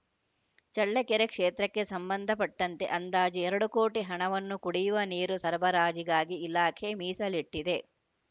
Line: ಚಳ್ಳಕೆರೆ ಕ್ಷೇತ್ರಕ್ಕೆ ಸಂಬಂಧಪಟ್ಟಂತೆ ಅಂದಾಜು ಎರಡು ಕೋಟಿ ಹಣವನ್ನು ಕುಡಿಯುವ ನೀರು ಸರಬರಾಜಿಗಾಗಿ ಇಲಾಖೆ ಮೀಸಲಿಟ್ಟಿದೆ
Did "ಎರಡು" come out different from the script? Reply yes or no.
no